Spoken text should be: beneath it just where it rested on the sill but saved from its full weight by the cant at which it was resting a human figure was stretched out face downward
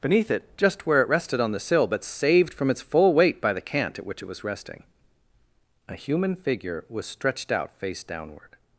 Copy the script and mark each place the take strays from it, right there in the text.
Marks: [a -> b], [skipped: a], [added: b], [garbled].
beneath it just where it rested on the sill but saved from its full weight by the cant at which it was resting a human figure was stretched out face downward